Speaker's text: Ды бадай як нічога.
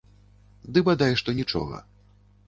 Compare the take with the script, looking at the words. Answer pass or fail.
fail